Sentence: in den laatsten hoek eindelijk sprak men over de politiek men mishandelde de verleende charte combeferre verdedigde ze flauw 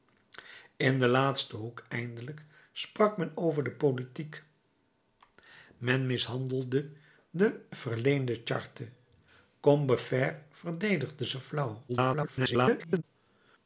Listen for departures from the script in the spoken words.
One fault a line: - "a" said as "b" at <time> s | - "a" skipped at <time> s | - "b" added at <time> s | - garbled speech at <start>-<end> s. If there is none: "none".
- garbled speech at 11.9-13.0 s